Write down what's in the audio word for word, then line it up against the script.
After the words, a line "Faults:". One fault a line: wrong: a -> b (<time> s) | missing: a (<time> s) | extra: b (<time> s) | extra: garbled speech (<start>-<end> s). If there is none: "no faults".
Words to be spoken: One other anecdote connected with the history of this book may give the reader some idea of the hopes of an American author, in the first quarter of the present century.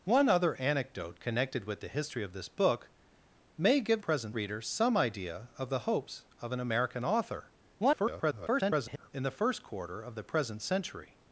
One other anecdote connected with the history of this book may give present reader some idea of the hopes of an American author, [garbled] in the first quarter of the present century.
Faults:
wrong: the -> present (4.0 s)
extra: garbled speech (7.8-9.1 s)